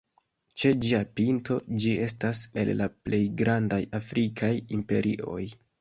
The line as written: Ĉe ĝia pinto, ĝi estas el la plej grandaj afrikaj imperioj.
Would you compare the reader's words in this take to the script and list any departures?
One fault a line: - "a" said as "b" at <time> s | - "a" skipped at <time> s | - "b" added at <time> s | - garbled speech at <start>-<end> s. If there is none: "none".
none